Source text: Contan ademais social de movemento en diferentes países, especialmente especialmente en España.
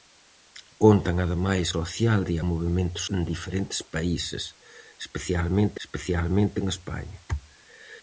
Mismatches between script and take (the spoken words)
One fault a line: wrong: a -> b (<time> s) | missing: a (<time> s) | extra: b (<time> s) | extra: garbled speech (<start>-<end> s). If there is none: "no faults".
no faults